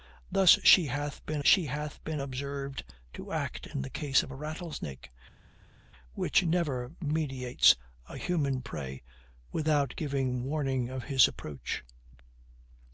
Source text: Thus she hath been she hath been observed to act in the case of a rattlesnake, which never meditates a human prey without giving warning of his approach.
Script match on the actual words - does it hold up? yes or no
yes